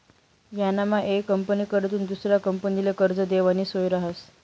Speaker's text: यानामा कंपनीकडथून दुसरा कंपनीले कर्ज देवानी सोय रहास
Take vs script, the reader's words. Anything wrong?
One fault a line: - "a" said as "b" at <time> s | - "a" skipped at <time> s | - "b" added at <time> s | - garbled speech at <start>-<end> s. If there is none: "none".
- "येक" added at 1.0 s